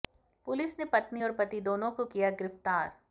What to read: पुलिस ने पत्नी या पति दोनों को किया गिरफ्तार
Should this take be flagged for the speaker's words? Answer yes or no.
yes